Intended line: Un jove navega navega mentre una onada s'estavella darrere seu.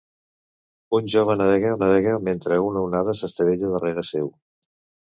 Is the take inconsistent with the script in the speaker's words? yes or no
no